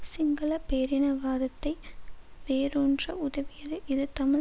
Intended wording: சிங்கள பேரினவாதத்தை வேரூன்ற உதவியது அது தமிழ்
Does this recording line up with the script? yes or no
no